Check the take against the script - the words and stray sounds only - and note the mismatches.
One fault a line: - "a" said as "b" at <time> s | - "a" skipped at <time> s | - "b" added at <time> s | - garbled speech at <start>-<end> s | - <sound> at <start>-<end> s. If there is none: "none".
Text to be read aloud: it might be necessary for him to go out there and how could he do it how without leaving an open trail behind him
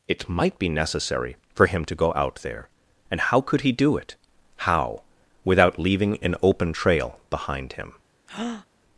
- breath at 8.3-8.7 s